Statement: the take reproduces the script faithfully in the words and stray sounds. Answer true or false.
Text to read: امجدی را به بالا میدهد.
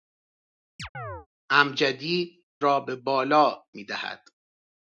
false